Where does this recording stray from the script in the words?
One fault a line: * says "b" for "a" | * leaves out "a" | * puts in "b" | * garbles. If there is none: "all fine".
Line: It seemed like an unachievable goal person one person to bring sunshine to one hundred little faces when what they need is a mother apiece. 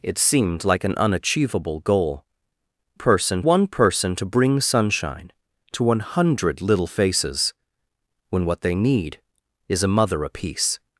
all fine